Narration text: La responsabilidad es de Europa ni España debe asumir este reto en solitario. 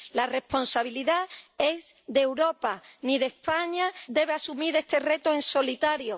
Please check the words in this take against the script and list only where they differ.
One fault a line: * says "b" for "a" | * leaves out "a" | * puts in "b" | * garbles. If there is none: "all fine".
all fine